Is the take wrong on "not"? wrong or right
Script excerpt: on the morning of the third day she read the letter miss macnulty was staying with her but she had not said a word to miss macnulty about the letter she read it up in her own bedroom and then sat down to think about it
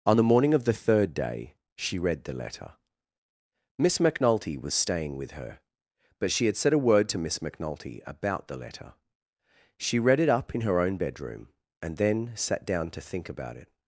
wrong